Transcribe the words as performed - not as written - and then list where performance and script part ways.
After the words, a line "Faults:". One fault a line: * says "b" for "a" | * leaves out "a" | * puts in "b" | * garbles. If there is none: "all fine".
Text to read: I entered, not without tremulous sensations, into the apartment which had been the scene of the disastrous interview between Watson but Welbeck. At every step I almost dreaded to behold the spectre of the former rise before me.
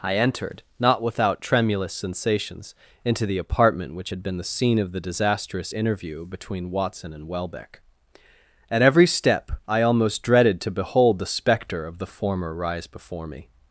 I entered, not without tremulous sensations, into the apartment which had been the scene of the disastrous interview between Watson and Welbeck. At every step I almost dreaded to behold the spectre of the former rise before me.
Faults:
* says "and" for "but"